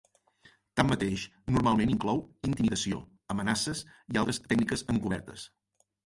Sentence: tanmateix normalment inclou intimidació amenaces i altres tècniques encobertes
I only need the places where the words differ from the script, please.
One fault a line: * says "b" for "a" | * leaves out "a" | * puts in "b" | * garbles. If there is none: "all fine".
all fine